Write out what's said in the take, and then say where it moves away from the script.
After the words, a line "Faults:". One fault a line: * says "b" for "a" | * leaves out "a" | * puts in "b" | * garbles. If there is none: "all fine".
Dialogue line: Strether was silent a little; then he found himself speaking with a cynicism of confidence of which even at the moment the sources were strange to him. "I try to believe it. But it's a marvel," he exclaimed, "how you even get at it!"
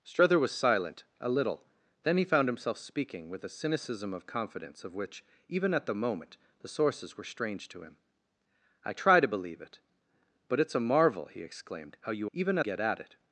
Strether was silent a little; then he found himself speaking with a cynicism of confidence of which even at the moment the sources were strange to him. "I try to believe it. But it's a marvel," he exclaimed, "how you even get at it!"
Faults:
all fine